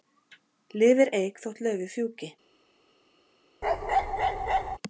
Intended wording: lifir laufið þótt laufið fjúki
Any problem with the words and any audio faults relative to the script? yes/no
yes